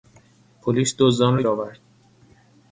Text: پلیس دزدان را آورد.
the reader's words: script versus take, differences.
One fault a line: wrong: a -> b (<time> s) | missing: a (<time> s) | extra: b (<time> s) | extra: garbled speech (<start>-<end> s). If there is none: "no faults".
no faults